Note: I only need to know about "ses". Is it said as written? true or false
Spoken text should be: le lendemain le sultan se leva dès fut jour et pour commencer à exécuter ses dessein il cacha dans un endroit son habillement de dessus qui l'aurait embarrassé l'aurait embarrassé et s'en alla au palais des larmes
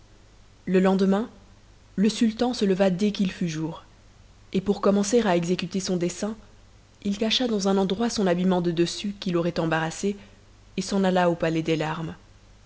false